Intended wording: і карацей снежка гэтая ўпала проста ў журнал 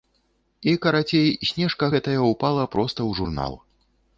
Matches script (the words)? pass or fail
pass